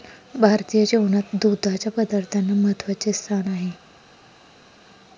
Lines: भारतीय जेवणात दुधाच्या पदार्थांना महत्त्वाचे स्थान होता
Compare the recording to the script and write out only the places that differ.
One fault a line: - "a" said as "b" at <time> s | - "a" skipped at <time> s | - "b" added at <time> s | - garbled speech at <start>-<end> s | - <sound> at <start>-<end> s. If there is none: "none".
- "होता" said as "आहे" at 3.5 s